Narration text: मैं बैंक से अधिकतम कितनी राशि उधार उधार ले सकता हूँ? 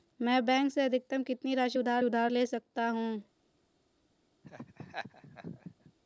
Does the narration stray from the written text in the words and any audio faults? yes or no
yes